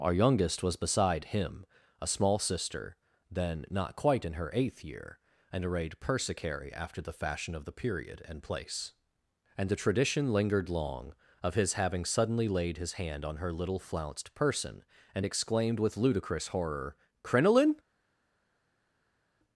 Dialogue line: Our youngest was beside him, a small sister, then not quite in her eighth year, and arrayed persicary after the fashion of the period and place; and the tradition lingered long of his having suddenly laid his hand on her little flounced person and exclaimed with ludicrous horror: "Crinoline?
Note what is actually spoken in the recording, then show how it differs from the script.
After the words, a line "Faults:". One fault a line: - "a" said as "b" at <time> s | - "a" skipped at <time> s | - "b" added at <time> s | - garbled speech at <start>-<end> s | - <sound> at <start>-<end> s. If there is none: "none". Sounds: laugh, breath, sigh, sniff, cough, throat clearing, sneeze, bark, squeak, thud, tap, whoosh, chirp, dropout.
Our youngest was beside him, a small sister, then not quite in her eighth year, and arrayed persicary after the fashion of the period and place; and the tradition lingered long of his having suddenly laid his hand on her little flounced person and exclaimed with ludicrous horror: "Crinoline?
Faults:
none